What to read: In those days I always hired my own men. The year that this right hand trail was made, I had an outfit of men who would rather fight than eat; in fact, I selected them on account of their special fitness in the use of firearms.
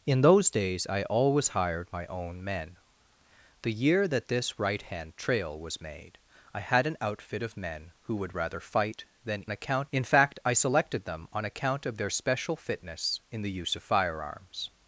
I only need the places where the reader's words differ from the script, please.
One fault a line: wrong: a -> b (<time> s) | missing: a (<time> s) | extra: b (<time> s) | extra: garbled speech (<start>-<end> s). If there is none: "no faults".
wrong: eat -> account (9.5 s)